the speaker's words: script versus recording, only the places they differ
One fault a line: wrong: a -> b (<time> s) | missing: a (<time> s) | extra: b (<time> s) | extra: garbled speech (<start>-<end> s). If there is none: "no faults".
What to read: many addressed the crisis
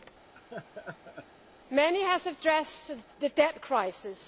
extra: have (2.0 s)
extra: debt (3.3 s)